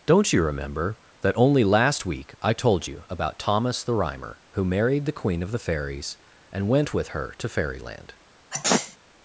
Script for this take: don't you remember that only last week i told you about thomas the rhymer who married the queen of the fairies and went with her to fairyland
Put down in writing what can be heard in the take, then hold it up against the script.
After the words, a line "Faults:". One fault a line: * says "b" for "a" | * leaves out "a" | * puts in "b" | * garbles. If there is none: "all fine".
don't you remember that only last week i told you about thomas the rhymer who married the queen of the fairies and went with her to fairyland
Faults:
all fine